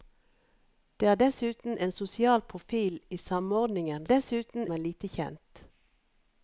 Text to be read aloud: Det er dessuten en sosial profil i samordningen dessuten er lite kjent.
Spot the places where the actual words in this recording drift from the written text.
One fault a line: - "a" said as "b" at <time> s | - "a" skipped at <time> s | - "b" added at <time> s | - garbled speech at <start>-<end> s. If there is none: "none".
none